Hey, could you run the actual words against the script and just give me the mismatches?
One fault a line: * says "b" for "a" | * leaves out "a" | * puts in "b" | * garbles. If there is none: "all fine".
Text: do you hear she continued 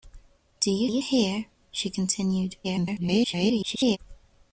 * puts in "you"
* garbles